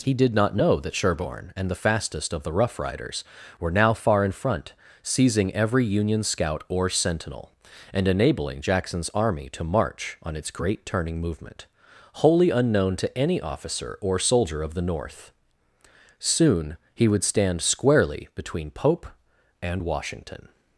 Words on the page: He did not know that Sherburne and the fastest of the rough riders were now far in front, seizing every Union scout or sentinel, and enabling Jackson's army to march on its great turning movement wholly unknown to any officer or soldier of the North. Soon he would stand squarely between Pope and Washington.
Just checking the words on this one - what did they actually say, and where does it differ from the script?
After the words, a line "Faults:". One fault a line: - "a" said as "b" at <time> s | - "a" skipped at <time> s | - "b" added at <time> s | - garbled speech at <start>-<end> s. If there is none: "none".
He did not know that Sherburne and the fastest of the rough riders were now far in front, seizing every Union scout or sentinel, and enabling Jackson's army to march on its great turning movement wholly unknown to any officer or soldier of the North. Soon he would stand squarely between Pope and Washington.
Faults:
none